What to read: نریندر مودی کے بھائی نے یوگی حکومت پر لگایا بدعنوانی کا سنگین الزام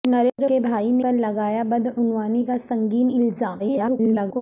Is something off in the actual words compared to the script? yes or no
yes